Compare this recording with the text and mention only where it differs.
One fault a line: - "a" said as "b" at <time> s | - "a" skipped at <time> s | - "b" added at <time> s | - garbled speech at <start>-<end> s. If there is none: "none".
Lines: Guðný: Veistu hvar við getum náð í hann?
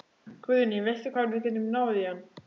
none